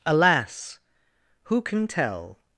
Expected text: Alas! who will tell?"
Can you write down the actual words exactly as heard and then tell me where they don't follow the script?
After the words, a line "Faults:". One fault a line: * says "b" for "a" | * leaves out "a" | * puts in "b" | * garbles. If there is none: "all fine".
Alas! who can tell?"
Faults:
* says "can" for "will"